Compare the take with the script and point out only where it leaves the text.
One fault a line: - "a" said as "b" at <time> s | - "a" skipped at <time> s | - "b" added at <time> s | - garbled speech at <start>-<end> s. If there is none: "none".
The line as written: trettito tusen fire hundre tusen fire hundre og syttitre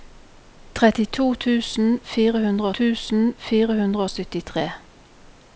none